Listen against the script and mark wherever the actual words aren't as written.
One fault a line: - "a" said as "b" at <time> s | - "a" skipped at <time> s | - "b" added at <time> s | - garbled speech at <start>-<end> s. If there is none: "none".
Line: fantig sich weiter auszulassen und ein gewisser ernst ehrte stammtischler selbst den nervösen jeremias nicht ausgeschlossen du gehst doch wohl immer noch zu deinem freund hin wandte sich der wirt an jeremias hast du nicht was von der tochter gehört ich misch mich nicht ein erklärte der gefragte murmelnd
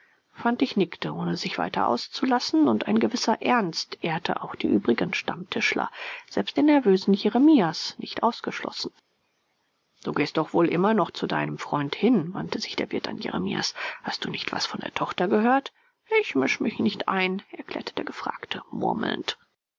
- "nickte ohne" added at 0.8 s
- "auch die übrigen" added at 4.4 s